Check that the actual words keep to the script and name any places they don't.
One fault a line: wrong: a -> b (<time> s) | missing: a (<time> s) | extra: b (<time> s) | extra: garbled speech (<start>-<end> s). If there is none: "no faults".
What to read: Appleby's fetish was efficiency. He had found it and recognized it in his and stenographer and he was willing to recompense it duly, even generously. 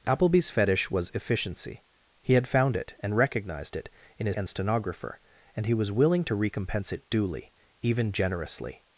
no faults